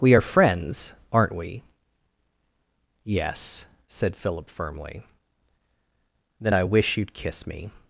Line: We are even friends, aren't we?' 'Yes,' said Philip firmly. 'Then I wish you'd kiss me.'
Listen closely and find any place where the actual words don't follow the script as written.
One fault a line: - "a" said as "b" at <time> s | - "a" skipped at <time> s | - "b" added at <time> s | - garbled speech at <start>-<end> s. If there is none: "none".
- "even" skipped at 0.2 s